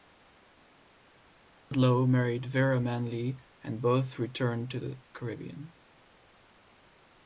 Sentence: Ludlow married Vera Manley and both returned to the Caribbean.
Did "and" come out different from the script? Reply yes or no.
no